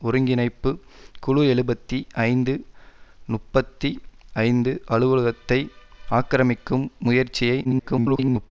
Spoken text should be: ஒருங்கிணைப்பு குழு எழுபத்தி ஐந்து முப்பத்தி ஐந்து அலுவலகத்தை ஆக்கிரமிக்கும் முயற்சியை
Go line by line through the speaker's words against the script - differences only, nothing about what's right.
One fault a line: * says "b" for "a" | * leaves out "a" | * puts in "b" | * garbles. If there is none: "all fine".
* garbles